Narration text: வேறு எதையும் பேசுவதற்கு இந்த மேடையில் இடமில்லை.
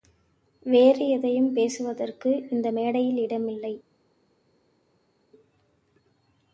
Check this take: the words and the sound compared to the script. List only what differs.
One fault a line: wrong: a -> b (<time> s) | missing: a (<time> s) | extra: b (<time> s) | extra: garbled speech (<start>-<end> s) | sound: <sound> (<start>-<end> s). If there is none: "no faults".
no faults